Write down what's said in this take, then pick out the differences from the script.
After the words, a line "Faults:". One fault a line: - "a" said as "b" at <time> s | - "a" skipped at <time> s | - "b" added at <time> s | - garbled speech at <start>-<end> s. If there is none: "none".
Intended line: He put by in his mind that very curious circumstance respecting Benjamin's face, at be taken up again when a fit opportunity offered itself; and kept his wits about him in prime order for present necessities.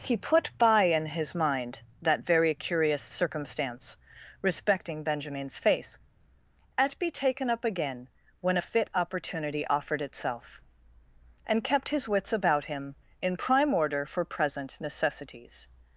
He put by in his mind that very curious circumstance respecting Benjamin's face, at be taken up again when a fit opportunity offered itself; and kept his wits about him in prime order for present necessities.
Faults:
none